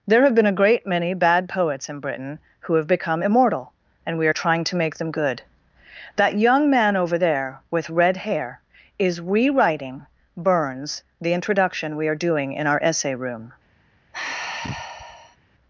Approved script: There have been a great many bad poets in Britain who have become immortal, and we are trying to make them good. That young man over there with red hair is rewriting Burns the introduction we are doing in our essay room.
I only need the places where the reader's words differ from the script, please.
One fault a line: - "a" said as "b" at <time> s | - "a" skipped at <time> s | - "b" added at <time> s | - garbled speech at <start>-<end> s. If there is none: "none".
none